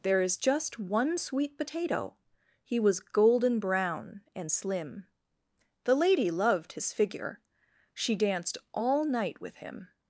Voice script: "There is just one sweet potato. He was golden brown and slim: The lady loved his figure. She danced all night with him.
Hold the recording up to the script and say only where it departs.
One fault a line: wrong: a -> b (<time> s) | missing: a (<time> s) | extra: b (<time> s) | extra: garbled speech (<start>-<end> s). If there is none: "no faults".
no faults